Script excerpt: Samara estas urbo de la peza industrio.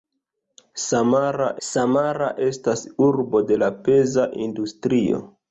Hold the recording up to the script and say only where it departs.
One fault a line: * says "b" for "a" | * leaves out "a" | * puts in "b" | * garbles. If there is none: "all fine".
* puts in "samara"